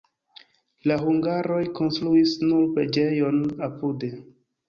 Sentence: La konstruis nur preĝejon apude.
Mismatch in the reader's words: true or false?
true